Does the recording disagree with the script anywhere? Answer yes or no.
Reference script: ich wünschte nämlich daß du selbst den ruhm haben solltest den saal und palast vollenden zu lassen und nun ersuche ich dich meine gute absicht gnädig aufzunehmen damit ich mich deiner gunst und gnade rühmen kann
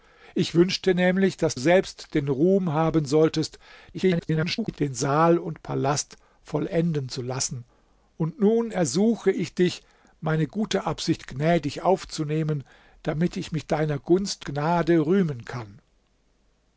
yes